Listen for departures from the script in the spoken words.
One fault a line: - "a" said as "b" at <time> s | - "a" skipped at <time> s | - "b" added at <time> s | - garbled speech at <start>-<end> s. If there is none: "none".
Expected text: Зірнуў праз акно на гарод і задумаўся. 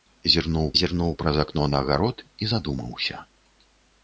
- "зірнуў" added at 0.8 s